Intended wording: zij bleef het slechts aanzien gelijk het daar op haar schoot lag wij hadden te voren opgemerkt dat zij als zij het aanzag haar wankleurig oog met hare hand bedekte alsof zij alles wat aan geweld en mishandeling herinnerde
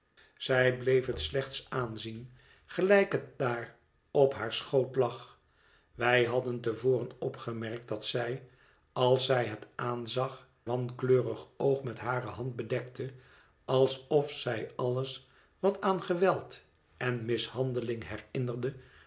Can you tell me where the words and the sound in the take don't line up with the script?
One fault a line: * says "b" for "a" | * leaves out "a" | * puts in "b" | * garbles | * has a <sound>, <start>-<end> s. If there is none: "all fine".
* leaves out "haar"